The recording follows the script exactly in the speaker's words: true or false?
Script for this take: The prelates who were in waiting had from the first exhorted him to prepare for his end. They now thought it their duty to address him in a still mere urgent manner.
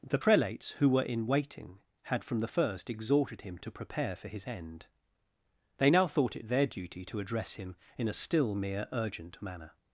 true